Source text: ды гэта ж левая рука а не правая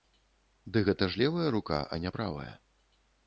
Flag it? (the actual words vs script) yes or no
no